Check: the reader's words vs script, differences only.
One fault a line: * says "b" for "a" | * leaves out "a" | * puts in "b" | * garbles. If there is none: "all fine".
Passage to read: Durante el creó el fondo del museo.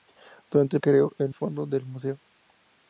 all fine